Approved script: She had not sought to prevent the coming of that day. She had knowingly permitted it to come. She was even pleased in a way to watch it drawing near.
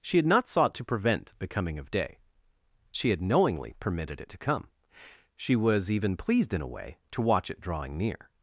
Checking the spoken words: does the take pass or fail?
fail